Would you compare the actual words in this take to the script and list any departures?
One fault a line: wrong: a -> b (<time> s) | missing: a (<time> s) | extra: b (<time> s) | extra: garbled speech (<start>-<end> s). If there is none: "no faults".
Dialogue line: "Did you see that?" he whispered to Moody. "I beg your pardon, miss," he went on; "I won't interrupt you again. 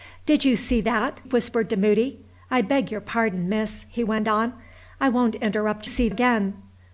missing: he (1.2 s)
wrong: you -> see (5.8 s)